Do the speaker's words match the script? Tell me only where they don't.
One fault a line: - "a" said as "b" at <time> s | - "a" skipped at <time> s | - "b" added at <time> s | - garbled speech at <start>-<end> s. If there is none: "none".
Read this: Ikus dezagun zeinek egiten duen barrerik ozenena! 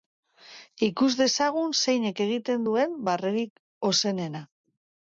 none